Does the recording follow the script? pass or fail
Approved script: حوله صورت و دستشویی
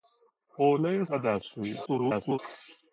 fail